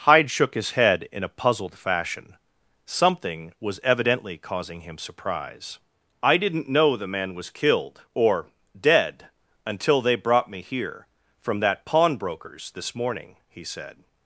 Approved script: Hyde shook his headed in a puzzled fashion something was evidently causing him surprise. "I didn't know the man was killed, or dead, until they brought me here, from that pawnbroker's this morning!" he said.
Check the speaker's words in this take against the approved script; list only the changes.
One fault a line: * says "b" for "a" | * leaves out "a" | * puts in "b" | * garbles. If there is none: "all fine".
* says "head" for "headed"